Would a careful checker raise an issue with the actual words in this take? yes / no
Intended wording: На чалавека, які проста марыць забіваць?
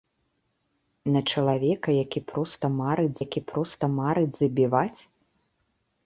yes